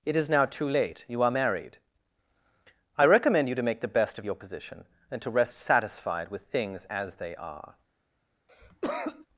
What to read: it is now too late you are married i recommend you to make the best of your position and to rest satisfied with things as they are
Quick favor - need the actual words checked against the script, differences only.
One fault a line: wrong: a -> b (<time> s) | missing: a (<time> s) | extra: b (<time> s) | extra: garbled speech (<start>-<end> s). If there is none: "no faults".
no faults